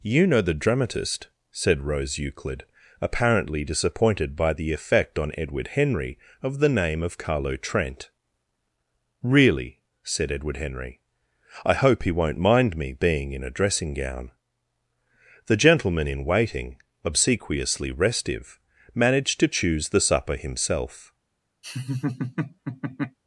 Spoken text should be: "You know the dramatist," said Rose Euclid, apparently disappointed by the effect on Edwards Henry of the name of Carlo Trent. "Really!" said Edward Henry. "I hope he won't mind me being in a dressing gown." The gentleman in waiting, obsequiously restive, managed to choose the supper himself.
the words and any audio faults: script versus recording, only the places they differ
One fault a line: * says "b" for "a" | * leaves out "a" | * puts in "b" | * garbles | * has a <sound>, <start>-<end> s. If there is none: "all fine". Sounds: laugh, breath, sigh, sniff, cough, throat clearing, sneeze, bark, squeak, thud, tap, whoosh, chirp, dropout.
* says "Edward" for "Edwards"
* has a laugh, 21.6-23.2 s